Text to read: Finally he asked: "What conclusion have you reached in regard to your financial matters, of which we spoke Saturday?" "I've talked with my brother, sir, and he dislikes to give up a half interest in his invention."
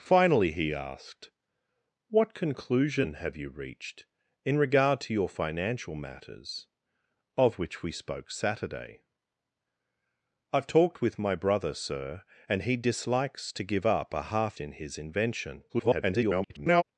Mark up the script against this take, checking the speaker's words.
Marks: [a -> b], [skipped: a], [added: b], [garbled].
Finally he asked: "What conclusion have you reached in regard to your financial matters, of which we spoke Saturday?" "I've talked with my brother, sir, and he dislikes to give up a half [skipped: interest] in his invention." [garbled]